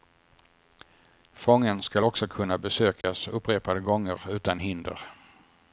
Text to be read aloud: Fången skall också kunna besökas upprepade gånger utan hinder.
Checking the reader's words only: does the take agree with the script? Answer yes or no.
yes